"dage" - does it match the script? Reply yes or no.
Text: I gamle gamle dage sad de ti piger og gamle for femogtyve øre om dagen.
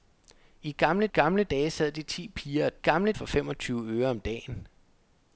yes